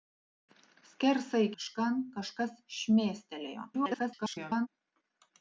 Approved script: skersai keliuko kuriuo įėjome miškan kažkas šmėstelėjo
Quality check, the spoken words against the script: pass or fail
fail